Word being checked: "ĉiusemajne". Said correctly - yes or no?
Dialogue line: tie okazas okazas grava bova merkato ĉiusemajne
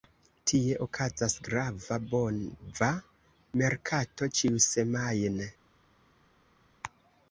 yes